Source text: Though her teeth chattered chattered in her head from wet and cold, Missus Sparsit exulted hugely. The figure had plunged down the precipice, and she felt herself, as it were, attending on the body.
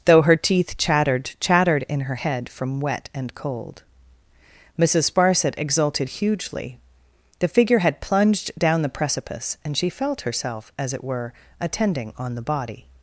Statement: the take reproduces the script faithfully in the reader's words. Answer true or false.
true